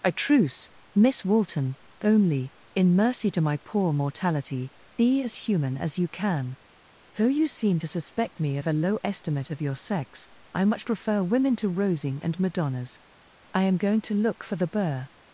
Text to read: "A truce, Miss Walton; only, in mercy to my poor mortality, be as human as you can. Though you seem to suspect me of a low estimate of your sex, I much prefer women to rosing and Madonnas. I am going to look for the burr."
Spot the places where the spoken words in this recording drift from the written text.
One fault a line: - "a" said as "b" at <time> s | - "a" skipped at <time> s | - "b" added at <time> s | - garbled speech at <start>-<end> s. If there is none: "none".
none